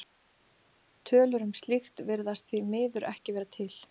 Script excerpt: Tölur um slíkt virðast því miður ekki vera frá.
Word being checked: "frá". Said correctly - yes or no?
no